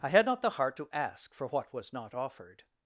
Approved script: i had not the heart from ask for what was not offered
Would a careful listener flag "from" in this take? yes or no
yes